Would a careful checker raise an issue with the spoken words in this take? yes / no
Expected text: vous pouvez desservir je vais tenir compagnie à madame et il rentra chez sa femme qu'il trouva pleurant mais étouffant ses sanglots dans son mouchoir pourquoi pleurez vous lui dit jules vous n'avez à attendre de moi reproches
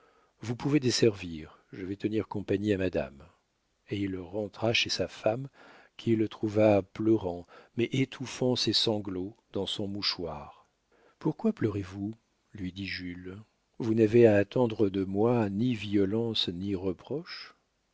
yes